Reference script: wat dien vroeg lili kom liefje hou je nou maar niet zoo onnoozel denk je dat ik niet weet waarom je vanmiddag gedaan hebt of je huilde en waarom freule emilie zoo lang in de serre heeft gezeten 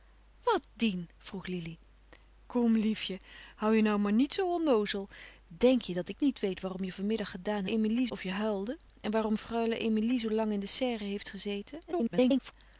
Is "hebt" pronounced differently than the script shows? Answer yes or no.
yes